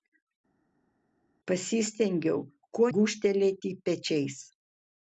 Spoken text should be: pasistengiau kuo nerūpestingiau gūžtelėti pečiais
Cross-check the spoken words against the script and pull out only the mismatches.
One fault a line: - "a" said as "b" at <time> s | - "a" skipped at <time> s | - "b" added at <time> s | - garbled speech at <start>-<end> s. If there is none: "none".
- "nerūpestingiau" skipped at 2.9 s